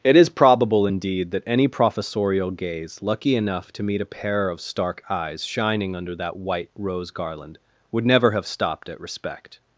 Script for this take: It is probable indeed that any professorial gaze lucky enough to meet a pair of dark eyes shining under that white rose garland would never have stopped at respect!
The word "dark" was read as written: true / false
false